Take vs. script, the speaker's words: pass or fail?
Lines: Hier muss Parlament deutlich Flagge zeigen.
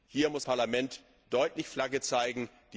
pass